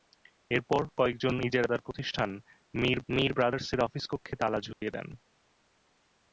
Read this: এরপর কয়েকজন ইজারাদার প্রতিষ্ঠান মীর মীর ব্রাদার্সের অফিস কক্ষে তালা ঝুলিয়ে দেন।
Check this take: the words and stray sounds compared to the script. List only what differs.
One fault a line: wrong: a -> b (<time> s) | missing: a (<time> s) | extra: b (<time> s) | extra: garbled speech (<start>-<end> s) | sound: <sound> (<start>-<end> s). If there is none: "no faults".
sound: dropout (4.7-4.8 s)